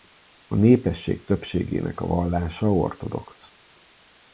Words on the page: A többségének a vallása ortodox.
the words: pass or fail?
fail